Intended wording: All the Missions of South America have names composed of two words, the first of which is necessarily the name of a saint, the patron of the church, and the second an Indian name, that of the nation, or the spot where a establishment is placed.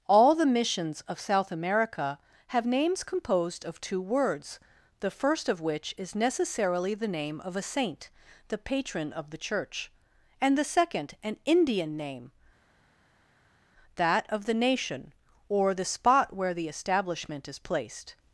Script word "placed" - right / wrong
right